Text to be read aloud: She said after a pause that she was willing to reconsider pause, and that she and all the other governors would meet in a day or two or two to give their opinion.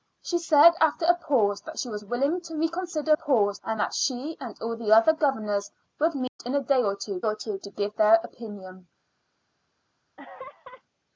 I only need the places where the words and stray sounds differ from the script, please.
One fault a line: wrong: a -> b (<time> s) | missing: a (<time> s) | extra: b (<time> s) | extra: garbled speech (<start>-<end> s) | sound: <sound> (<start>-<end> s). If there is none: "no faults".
sound: dropout (6.3-6.4 s)
sound: laugh (10.2-10.8 s)